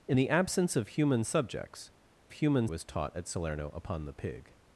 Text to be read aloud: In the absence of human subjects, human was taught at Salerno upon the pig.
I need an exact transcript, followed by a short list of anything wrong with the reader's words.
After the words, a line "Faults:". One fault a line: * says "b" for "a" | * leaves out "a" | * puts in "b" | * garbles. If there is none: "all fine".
In the absence of human subjects, human was taught at Salerno upon the pig.
Faults:
all fine